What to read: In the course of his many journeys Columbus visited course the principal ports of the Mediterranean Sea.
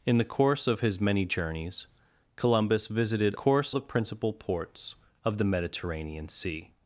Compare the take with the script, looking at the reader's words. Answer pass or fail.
pass